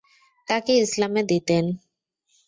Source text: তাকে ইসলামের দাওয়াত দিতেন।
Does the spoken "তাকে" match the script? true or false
true